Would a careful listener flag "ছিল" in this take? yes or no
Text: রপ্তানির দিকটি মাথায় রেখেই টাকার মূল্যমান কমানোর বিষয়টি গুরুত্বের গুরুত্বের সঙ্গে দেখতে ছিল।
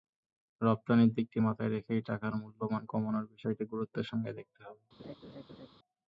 yes